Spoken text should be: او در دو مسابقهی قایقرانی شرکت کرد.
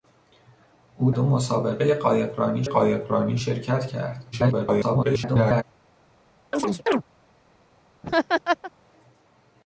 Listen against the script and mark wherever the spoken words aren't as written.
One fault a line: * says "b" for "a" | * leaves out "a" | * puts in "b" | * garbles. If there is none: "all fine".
* leaves out "در"
* puts in "قایقرانی"
* garbles